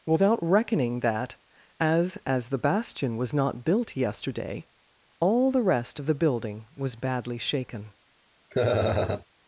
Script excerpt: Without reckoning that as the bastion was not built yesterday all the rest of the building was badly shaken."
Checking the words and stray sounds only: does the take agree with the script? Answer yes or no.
no